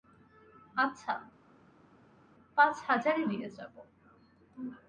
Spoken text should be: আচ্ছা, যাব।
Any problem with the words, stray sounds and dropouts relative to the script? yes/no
yes